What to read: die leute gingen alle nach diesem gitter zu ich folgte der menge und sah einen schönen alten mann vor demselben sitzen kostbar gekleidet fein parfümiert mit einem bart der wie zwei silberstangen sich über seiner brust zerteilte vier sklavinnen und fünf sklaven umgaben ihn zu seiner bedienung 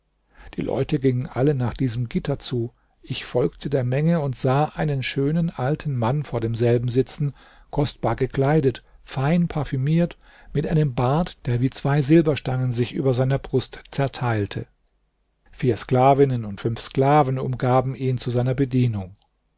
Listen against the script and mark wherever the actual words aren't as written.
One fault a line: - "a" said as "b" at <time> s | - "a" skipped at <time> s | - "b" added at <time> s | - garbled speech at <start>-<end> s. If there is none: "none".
none